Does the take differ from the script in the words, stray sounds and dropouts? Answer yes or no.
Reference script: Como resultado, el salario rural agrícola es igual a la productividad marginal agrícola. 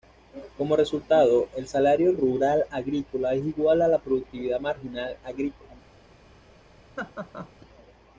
yes